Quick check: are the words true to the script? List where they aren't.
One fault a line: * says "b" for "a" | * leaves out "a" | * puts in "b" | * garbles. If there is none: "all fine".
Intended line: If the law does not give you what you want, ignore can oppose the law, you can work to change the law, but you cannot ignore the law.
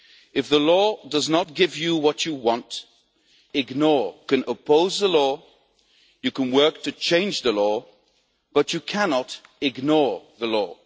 all fine